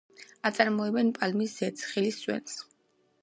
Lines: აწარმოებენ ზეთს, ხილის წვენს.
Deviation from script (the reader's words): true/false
true